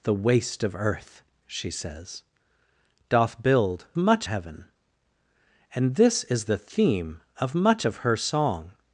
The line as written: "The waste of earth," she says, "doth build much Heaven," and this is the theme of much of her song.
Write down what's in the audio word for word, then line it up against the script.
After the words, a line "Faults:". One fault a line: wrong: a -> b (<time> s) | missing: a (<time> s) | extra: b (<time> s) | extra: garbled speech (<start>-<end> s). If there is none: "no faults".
"The waste of earth," she says, "doth build much Heaven," and this is the theme of much of her song.
Faults:
no faults